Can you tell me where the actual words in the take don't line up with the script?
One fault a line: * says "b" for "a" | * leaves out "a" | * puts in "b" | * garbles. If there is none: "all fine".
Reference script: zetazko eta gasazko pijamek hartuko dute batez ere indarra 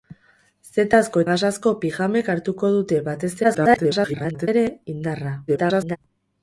* leaves out "eta"
* garbles
* garbles